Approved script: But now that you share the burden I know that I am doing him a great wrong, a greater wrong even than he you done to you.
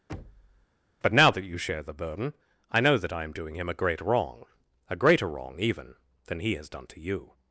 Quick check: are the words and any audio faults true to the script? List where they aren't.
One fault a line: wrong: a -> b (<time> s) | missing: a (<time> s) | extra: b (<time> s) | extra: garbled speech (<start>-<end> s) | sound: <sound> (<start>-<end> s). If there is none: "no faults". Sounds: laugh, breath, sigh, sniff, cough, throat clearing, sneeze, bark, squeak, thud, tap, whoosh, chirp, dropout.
sound: thud (0.1-0.7 s)
wrong: you -> has (6.5 s)